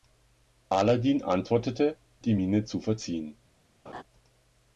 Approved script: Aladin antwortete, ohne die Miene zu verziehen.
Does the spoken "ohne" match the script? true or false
false